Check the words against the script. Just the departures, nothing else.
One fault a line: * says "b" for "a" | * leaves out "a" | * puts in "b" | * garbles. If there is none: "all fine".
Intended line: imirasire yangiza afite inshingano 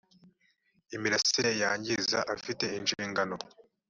all fine